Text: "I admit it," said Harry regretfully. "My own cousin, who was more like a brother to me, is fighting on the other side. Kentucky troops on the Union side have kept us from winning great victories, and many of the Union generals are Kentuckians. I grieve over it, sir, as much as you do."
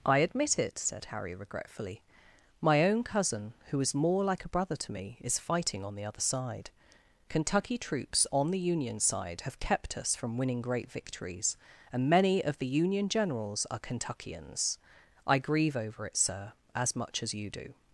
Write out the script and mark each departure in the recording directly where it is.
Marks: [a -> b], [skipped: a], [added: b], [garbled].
"I admit it," said Harry regretfully. "My own cousin, who [was -> is] more like a brother to me, is fighting on the other side. Kentucky troops on the Union side have kept us from winning great victories, and many of the Union generals are Kentuckians. I grieve over it, sir, as much as you do."